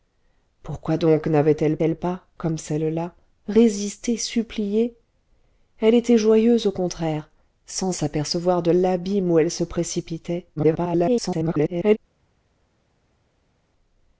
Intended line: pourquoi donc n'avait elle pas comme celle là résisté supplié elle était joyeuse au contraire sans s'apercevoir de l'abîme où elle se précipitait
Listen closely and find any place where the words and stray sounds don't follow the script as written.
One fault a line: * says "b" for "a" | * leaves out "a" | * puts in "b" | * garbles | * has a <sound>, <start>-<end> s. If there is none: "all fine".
* puts in "elle"
* garbles